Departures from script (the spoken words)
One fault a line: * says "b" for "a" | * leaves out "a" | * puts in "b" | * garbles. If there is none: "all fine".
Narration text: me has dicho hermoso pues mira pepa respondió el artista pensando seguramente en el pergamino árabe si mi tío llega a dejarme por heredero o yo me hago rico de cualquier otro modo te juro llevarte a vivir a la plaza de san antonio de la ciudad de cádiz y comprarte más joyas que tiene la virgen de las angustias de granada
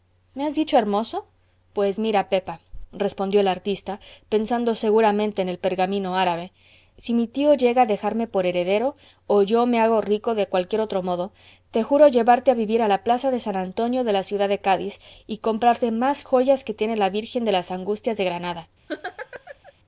all fine